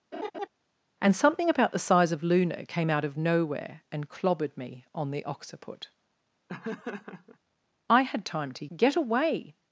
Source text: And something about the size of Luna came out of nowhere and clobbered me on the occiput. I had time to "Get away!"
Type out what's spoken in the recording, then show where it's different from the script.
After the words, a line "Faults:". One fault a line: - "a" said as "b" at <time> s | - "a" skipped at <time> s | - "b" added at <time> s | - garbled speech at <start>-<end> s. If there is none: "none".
And something about the size of Luna came out of nowhere and clobbered me on the occiput. I had time to "Get away!"
Faults:
none